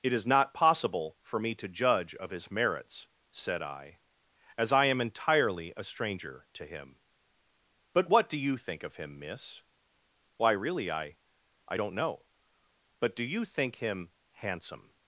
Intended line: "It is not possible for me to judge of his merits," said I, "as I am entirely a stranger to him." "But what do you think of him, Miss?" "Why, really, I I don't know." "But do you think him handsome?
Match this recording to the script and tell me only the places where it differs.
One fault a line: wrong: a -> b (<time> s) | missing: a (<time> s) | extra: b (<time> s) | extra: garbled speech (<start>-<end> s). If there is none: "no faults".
no faults